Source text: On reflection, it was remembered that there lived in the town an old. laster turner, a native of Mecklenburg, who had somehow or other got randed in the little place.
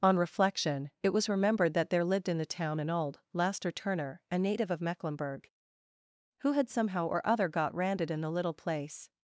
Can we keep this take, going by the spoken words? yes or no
yes